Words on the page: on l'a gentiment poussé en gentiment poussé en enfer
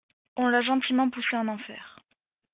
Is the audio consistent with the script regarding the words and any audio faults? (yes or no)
no